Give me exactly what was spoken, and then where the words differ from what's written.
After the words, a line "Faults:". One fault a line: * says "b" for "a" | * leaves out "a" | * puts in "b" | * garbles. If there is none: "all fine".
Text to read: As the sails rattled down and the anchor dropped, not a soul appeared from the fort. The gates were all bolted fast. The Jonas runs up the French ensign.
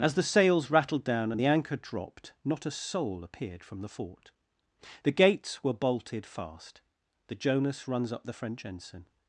As the sails rattled down and the anchor dropped, not a soul appeared from the fort. The gates were bolted fast. The Jonas runs up the French ensign.
Faults:
* leaves out "all"